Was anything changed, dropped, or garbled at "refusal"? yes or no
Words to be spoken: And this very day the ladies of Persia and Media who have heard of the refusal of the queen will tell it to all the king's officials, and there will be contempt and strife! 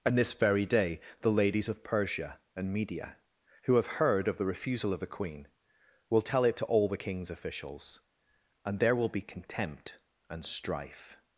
no